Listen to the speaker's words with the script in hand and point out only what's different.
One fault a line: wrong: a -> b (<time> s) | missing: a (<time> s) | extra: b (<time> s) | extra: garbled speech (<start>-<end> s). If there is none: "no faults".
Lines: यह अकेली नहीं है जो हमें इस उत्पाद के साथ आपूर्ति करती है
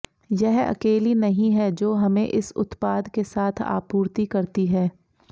no faults